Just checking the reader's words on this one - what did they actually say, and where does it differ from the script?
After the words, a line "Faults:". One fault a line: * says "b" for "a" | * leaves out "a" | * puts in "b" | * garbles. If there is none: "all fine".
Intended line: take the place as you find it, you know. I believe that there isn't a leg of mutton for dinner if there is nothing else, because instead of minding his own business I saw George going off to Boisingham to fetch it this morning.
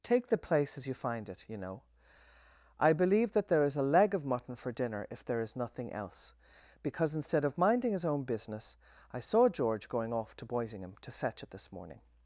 take the place as you find it, you know. I believe that there is a leg of mutton for dinner if there is nothing else, because instead of minding his own business I saw George going off to Boisingham to fetch it this morning.
Faults:
* says "is" for "isn't"